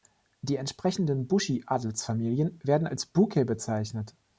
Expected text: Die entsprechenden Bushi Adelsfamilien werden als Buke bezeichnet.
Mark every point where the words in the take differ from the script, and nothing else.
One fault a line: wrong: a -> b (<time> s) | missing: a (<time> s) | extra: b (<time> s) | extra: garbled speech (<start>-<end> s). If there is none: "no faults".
no faults